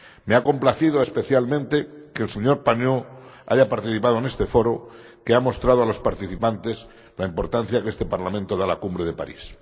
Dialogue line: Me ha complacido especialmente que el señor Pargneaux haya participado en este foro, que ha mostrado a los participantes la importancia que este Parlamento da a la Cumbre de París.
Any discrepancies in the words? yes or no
no